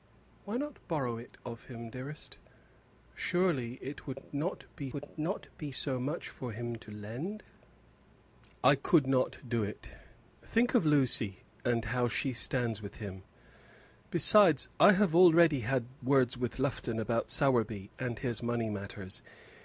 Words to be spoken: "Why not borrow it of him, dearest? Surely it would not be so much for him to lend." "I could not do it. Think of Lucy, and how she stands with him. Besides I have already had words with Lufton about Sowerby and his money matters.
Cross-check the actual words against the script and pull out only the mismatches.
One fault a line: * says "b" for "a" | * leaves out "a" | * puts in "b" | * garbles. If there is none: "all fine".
* puts in "would not be"